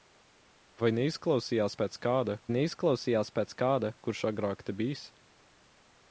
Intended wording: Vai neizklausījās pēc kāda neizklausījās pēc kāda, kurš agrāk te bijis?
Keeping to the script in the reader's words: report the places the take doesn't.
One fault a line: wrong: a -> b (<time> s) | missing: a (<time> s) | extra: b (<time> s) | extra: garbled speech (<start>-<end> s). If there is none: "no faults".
no faults